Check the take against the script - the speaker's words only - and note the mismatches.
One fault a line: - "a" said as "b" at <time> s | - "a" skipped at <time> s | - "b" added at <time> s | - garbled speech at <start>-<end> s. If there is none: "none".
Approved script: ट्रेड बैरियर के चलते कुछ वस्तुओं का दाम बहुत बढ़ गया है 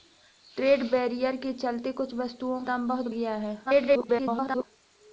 - "का" skipped at 2.6 s
- "बढ़" skipped at 3.1 s
- garbled speech at 3.6-4.6 s